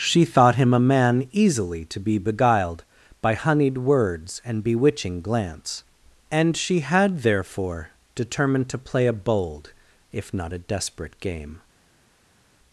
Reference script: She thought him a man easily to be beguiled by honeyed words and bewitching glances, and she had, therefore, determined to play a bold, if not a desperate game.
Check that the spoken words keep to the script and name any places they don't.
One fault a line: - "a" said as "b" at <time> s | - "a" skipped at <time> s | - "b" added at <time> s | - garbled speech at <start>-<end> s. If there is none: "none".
- "glances" said as "glance" at 5.2 s